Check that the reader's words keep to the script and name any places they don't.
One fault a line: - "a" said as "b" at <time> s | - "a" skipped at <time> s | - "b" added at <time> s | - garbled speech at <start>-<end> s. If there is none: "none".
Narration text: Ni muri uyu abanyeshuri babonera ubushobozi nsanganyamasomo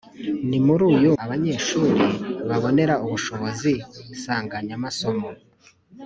none